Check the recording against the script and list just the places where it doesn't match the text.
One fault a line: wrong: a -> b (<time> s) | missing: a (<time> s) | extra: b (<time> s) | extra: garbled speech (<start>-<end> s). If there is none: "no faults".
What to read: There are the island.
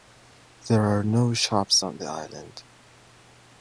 extra: no shops on (1.0 s)